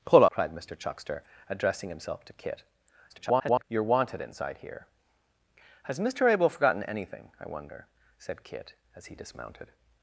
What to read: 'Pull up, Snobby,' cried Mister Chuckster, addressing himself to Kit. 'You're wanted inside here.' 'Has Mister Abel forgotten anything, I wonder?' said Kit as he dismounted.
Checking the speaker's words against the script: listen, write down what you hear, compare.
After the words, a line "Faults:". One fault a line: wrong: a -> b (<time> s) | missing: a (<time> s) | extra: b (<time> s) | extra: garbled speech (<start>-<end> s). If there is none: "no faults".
'Pull,' cried Mister Chuckster, addressing himself to Kit. [garbled] 'You're wanted inside here.' 'Has Mister Abel forgotten anything, I wonder?' said Kit as he dismounted.
Faults:
missing: up Snobby (0.2 s)
extra: garbled speech (3.1-3.6 s)